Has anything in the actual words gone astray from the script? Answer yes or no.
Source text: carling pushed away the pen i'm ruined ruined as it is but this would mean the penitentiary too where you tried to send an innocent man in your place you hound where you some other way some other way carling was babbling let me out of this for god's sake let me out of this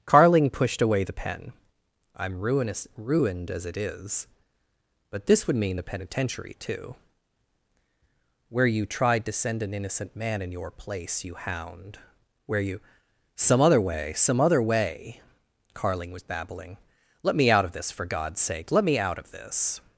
yes